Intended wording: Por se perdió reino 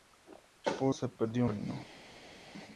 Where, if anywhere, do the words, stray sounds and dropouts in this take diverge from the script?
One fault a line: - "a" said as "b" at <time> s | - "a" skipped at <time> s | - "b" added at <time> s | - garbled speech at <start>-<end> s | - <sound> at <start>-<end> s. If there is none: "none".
none